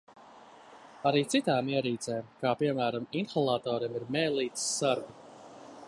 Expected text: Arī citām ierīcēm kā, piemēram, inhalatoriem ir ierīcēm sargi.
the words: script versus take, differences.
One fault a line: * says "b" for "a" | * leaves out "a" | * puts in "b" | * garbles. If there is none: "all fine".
* says "mēlītes" for "ierīcēm"